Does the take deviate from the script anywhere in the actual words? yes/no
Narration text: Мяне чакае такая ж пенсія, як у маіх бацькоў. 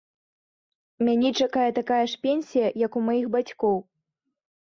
no